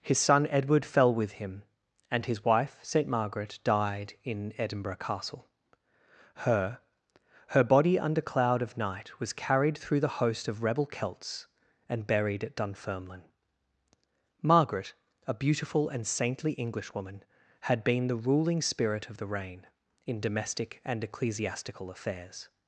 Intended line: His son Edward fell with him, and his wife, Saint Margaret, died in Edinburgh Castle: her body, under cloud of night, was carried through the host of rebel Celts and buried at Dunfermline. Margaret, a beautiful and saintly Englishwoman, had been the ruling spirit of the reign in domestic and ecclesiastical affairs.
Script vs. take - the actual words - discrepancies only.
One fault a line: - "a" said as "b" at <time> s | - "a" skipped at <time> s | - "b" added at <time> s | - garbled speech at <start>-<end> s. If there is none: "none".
- "her" added at 7.5 s